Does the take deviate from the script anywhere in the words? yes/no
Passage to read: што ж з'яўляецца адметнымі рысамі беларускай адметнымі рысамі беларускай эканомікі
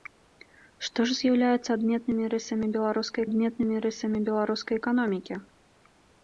no